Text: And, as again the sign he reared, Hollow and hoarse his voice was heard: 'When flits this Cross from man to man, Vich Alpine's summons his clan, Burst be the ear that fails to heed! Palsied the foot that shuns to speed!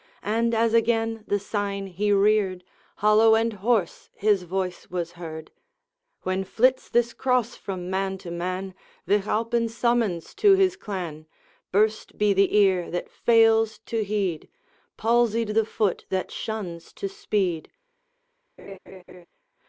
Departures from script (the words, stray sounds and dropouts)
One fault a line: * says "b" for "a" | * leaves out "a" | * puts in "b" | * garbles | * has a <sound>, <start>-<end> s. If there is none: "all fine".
* puts in "to"
* has a laugh, 18.6-19.3 s